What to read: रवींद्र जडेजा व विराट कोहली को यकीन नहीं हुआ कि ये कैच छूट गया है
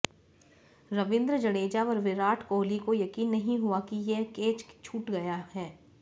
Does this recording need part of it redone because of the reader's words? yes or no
no